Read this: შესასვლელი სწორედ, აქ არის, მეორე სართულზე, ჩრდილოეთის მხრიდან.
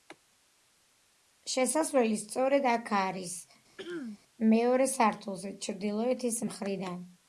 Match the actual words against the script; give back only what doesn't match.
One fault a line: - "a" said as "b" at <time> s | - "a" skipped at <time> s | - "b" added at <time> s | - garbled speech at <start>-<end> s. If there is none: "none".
none